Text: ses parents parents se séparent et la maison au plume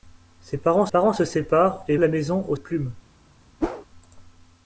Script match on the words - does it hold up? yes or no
yes